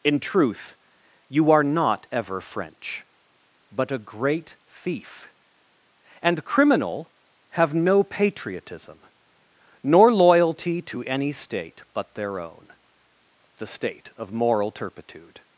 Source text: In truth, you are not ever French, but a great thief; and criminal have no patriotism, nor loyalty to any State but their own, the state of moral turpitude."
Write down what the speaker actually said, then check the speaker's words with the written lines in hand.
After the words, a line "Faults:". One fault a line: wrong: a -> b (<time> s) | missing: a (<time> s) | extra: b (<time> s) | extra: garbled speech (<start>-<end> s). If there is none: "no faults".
In truth, you are not ever French, but a great thief; and criminal have no patriotism, nor loyalty to any State but their own, the state of moral turpitude."
Faults:
no faults